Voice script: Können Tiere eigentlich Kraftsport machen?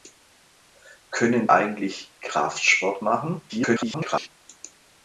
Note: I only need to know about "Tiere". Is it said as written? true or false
false